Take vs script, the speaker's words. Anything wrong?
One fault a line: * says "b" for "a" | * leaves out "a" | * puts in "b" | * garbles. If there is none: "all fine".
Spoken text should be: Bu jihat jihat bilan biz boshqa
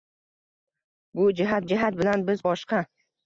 all fine